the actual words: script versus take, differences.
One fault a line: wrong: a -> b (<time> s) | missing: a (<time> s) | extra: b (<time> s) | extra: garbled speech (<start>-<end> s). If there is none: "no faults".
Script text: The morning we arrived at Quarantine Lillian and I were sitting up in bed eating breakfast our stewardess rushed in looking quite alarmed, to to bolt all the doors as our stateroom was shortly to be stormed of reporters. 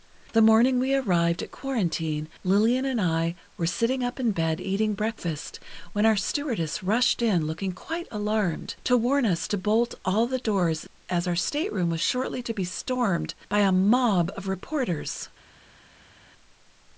extra: when (5.9 s)
extra: warn us (9.0 s)
extra: by a mob (13.5 s)